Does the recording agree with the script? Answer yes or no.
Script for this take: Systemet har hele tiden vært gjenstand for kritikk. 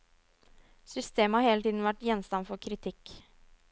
yes